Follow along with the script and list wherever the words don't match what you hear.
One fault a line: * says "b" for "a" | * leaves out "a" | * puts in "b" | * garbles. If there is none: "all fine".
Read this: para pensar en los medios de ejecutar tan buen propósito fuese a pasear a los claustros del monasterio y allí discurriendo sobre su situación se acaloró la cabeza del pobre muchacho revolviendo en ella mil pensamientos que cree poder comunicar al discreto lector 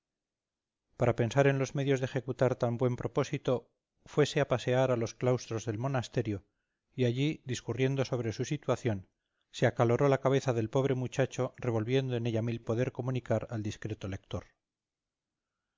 * leaves out "pensamientos que cree"